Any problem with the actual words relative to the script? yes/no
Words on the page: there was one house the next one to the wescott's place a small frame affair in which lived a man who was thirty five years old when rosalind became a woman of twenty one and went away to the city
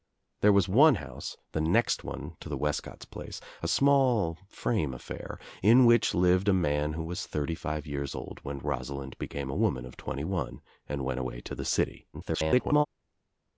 yes